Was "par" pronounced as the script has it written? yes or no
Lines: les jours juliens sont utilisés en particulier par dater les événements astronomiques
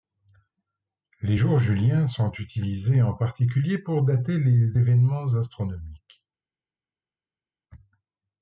no